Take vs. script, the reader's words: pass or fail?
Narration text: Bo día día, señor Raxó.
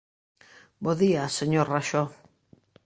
fail